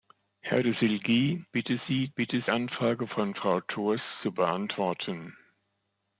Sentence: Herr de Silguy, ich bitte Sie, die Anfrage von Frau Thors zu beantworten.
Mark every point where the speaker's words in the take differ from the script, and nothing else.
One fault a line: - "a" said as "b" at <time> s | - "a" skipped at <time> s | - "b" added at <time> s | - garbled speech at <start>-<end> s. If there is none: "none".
- "ich" skipped at 1.4 s
- "die" said as "bitte" at 2.1 s